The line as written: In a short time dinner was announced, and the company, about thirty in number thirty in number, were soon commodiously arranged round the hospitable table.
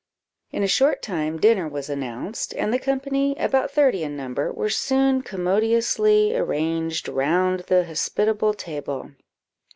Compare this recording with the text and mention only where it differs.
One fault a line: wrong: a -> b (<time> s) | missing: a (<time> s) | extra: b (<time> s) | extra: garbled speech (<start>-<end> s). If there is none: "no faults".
missing: thirty in number (4.5 s)